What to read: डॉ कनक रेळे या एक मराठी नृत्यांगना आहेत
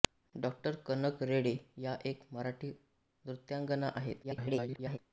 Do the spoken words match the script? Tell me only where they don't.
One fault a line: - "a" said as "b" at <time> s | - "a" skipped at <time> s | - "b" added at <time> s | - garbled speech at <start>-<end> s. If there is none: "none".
- garbled speech at 4.2-5.0 s